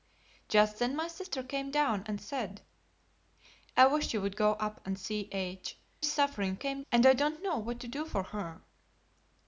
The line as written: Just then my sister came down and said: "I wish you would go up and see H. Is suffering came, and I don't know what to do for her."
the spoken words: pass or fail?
pass